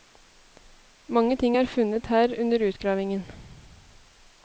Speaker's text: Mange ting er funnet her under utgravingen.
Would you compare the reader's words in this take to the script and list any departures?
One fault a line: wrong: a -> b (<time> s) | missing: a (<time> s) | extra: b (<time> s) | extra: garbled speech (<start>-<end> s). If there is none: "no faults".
no faults